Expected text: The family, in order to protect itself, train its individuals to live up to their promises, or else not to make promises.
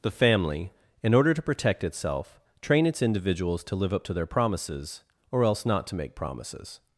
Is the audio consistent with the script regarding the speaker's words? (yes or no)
yes